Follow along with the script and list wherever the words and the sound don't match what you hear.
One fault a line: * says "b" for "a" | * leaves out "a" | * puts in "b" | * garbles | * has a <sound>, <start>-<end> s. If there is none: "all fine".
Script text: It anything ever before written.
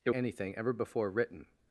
all fine